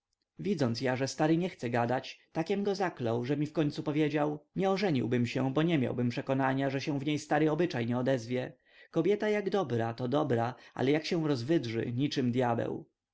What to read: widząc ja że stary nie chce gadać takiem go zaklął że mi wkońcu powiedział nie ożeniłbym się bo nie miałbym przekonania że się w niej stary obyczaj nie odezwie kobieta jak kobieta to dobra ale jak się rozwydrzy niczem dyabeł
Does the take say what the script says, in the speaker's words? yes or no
no